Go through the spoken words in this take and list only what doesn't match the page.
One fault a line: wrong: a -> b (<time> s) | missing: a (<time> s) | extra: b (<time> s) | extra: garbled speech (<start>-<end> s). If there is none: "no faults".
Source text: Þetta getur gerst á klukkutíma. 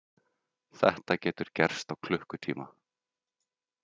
no faults